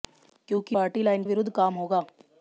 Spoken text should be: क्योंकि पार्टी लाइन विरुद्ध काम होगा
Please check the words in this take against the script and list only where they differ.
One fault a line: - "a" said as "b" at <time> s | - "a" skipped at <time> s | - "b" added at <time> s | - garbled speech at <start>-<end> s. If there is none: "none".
none